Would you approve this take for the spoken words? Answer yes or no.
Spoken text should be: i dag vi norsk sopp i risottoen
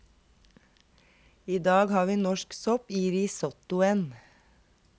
no